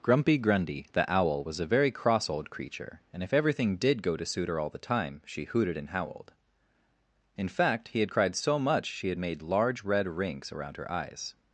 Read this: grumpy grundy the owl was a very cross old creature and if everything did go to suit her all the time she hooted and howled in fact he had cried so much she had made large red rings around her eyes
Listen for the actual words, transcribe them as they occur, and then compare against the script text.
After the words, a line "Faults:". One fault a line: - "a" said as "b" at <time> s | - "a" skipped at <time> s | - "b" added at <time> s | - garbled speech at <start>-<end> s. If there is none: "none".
grumpy grundy the owl was a very cross old creature and if everything did go to suit her all the time she hooted and howled in fact he had cried so much she had made large red rings around her eyes
Faults:
none